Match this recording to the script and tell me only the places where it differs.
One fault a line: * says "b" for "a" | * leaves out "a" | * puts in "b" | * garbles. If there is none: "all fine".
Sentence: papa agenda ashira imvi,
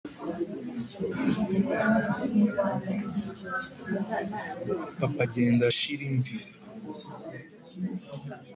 all fine